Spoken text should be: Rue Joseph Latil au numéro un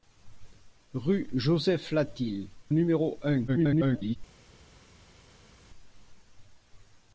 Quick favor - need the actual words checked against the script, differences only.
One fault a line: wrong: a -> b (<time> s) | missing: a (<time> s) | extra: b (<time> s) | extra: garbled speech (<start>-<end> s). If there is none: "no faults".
missing: au (2.5 s)
extra: garbled speech (3.5-4.2 s)